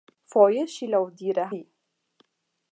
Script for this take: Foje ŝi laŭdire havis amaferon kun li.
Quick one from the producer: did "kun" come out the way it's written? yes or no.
no